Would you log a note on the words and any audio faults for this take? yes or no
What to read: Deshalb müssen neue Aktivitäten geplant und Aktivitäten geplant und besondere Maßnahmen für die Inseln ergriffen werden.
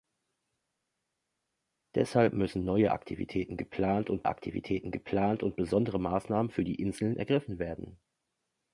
no